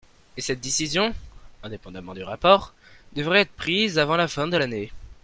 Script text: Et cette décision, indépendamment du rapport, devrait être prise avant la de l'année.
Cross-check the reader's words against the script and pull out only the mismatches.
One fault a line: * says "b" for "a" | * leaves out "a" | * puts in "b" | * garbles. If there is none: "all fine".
* puts in "fin"